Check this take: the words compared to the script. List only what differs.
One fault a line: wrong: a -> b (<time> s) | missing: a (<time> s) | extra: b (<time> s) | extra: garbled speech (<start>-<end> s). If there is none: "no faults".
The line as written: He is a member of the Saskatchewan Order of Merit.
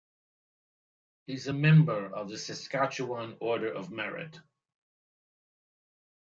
no faults